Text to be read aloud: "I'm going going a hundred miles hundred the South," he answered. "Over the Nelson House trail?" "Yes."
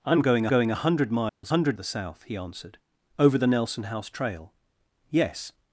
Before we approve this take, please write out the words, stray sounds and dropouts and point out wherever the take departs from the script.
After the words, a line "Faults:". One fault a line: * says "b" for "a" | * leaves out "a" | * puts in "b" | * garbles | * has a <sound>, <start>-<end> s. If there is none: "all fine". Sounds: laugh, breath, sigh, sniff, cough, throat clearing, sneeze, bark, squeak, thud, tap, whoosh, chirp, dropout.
"I'm going going a hundred miles hundred the South," he answered. "Over the Nelson House trail?" "Yes."
Faults:
* has a dropout, 1.3-1.4 s